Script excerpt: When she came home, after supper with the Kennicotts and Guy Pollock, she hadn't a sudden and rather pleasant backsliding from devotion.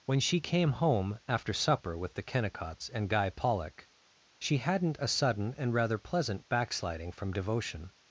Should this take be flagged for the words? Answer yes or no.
no